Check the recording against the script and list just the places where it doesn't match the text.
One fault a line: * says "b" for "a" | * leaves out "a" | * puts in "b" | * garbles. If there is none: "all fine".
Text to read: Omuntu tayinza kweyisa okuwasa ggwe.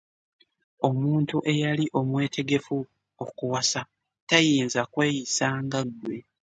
* puts in "eyali omwetegefu okuwasa"
* says "nga" for "okuwasa"